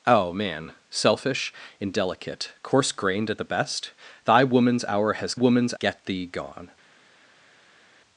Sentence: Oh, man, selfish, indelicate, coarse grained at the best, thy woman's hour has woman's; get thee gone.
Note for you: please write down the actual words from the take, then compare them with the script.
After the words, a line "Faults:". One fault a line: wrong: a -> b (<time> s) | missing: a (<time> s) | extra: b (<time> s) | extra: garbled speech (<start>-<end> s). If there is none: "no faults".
Oh, man, selfish, indelicate, coarse grained at the best, thy woman's hour has woman's; get thee gone.
Faults:
no faults